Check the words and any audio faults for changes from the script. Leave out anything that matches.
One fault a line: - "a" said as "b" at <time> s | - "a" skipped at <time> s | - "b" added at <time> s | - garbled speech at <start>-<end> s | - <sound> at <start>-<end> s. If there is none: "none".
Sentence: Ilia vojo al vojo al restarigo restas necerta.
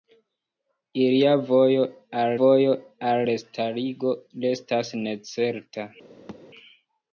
- thud at 6.3-6.4 s